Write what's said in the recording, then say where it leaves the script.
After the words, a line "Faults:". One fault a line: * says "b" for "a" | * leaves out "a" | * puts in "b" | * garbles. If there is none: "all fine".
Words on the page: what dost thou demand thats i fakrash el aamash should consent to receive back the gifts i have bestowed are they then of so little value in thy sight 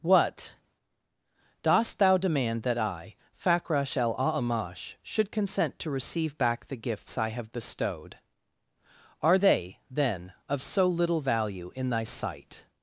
what dost thou demand that i fakrash el aamash should consent to receive back the gifts i have bestowed are they then of so little value in thy sight
Faults:
* says "that" for "thats"